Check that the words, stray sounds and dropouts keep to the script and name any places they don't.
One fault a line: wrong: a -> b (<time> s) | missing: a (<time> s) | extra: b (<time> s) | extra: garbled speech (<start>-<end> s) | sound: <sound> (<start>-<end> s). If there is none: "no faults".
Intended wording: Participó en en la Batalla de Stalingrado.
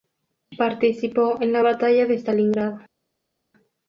missing: en (1.5 s)